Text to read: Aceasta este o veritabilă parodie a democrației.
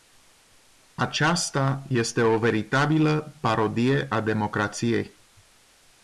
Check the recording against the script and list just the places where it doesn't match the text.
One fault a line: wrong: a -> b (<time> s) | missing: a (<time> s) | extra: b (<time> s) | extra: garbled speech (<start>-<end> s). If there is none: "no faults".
no faults